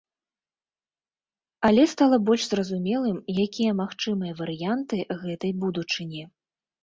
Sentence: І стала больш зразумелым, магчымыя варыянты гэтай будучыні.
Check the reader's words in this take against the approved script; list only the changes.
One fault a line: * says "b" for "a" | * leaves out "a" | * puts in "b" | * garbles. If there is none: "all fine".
* says "Але" for "І"
* puts in "якія"